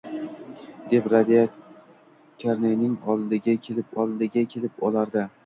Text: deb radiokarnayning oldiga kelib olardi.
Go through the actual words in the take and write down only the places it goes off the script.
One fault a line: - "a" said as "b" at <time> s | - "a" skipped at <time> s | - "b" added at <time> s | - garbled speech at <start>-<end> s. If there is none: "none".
- "oldiga kelib" added at 4.0 s